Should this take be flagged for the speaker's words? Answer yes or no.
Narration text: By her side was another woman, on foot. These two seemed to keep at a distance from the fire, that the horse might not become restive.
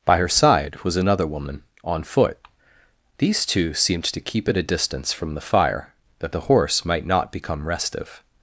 no